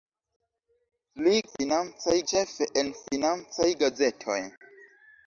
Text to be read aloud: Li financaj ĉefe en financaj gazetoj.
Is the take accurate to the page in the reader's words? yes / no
yes